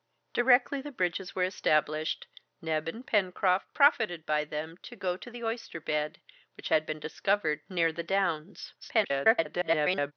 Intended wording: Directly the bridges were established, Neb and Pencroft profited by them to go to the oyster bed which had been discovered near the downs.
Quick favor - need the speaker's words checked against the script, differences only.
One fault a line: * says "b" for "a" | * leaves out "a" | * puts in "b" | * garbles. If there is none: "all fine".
* garbles